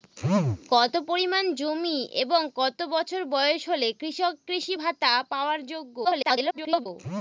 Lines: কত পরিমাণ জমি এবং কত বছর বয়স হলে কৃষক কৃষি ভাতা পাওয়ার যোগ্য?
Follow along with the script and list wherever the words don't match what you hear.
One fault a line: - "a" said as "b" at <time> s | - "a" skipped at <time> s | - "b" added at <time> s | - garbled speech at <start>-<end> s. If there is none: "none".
- garbled speech at 6.0-6.9 s